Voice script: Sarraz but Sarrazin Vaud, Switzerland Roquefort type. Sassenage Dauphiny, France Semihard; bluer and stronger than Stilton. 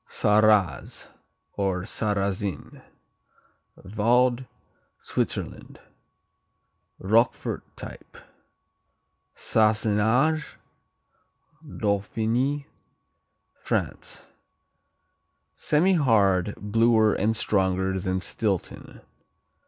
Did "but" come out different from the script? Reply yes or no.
yes